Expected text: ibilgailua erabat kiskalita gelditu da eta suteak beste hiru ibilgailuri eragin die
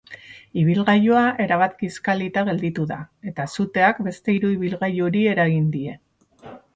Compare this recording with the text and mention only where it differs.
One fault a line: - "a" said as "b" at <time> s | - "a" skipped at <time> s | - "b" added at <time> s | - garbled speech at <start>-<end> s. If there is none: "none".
none